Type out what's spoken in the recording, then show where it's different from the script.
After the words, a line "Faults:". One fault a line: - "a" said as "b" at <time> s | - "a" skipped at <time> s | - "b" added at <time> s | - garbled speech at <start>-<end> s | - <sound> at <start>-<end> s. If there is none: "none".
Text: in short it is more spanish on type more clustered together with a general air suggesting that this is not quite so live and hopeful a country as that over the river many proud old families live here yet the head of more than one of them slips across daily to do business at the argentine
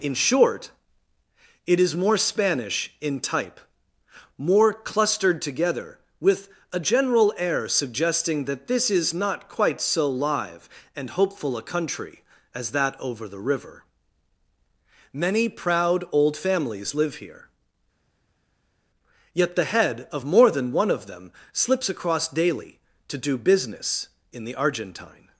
in short it is more spanish in type more clustered together with a general air suggesting that this is not quite so live and hopeful a country as that over the river many proud old families live here yet the head of more than one of them slips across daily to do business in the argentine
Faults:
- "on" said as "in" at 3.0 s
- "at" said as "in" at 24.3 s